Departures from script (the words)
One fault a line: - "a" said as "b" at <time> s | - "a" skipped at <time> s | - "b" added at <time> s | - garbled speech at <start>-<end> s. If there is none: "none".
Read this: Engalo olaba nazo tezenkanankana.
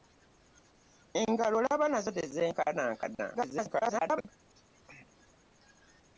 - garbled speech at 3.3-4.3 s